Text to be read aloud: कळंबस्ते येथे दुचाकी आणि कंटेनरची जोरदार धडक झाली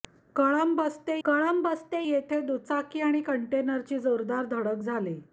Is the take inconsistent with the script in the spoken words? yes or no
yes